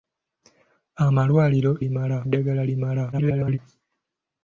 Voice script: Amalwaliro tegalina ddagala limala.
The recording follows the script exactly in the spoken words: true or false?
false